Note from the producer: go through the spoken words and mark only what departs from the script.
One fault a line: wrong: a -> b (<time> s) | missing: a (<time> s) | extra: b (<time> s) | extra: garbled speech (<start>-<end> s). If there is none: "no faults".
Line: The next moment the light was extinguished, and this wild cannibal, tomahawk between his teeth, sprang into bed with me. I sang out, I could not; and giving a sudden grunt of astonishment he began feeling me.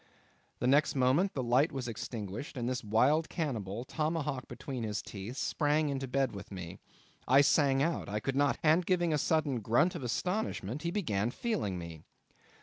no faults